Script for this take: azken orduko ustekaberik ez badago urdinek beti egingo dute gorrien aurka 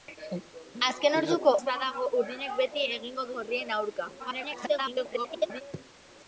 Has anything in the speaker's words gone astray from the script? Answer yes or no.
yes